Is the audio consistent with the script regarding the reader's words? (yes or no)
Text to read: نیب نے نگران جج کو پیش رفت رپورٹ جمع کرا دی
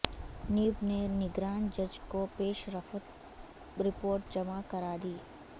yes